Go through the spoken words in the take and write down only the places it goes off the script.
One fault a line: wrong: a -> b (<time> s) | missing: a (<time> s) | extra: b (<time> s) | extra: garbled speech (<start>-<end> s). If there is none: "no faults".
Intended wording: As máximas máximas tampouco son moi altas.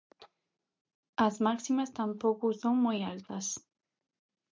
missing: máximas (1.9 s)